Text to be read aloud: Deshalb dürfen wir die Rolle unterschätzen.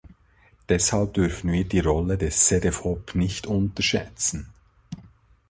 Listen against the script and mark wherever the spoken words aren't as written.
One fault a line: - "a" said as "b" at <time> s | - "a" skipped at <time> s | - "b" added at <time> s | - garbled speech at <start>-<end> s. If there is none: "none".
- "des Cedefop nicht" added at 2.2 s